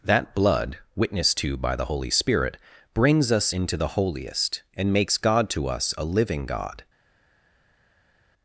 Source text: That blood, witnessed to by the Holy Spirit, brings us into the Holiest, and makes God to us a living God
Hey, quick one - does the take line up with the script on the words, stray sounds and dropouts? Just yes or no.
yes